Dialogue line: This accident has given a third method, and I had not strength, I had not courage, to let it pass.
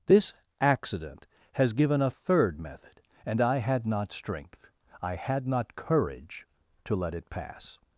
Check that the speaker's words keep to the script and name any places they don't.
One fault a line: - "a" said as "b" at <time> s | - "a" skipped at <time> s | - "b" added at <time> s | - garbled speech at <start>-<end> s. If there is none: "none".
none